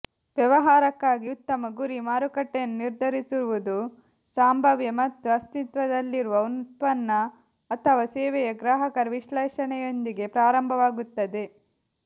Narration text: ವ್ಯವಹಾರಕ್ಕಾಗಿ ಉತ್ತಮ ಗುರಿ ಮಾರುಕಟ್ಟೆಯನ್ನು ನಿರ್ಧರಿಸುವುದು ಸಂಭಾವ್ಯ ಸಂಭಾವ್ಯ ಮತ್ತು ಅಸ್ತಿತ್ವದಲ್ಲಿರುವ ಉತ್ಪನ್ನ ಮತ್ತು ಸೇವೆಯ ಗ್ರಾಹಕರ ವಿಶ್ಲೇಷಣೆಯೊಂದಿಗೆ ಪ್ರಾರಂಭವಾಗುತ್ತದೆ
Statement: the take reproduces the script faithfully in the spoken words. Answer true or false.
false